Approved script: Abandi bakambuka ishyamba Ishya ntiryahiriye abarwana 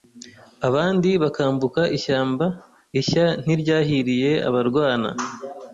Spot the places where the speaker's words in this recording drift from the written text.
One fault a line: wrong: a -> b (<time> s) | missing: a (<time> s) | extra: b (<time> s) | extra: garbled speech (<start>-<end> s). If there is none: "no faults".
no faults